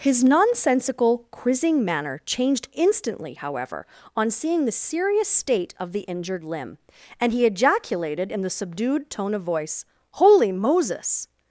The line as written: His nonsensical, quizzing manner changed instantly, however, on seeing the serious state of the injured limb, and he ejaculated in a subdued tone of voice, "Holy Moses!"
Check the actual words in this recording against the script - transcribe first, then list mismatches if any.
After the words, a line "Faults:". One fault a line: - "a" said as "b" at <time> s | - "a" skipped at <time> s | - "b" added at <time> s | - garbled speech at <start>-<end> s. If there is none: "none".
His nonsensical, quizzing manner changed instantly, however, on seeing the serious state of the injured limb, and he ejaculated in the subdued tone of voice, "Holy Moses!"
Faults:
- "a" said as "the" at 8.4 s